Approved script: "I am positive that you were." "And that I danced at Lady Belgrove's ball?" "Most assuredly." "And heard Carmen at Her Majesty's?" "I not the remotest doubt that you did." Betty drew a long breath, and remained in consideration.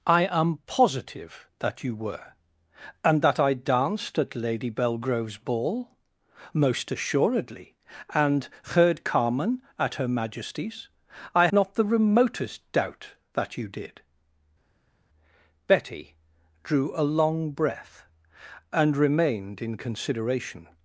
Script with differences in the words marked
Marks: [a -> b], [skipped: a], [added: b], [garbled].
"I am positive that you were." "And that I danced at Lady Belgrove's ball?" "Most assuredly." "And heard Carmen at Her Majesty's?" "I not the remotest doubt that you did." Betty drew a long breath, and remained in consideration.